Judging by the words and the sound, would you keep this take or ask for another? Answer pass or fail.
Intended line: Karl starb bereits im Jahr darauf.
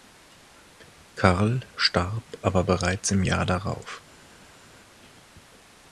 fail